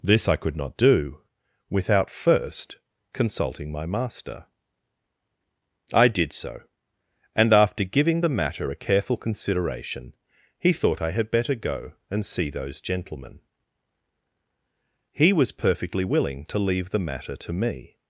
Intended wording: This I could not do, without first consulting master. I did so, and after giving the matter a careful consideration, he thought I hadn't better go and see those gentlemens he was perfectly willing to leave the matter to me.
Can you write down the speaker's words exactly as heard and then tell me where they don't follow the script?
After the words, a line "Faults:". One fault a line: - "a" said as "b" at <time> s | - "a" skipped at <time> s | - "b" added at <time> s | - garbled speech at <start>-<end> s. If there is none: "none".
This I could not do, without first consulting my master. I did so, and after giving the matter a careful consideration, he thought I had better go and see those gentlemen he was perfectly willing to leave the matter to me.
Faults:
- "my" added at 3.7 s
- "hadn't" said as "had" at 11.1 s
- "gentlemens" said as "gentlemen" at 12.8 s